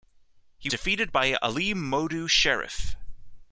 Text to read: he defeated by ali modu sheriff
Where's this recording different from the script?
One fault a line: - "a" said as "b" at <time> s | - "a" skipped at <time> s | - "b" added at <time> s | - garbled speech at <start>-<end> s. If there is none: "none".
none